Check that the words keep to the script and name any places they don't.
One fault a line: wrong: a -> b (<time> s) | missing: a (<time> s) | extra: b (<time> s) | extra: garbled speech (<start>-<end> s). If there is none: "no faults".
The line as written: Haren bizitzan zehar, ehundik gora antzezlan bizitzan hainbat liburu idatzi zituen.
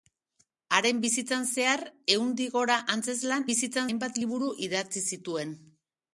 no faults